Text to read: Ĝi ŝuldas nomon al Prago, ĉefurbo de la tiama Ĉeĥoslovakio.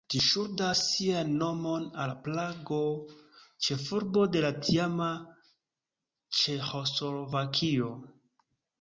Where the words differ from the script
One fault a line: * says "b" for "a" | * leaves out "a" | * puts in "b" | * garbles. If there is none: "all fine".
* puts in "sian"